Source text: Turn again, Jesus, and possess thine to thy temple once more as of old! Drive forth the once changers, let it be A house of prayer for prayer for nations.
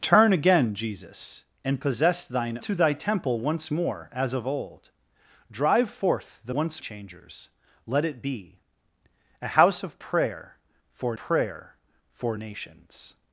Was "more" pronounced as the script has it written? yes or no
yes